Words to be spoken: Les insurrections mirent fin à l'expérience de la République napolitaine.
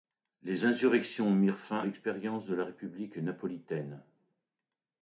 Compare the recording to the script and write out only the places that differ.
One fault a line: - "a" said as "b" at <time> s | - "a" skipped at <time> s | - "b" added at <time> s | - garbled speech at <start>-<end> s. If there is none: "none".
- "à" skipped at 1.8 s